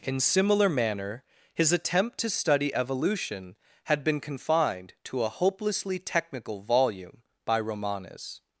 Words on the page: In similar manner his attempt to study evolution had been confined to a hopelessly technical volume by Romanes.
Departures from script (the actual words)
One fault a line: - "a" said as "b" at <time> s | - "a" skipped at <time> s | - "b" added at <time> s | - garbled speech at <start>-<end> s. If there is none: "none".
none